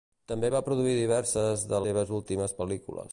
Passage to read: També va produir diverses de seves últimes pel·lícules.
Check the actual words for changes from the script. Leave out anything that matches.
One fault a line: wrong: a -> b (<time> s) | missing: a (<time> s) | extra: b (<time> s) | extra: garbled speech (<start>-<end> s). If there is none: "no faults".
no faults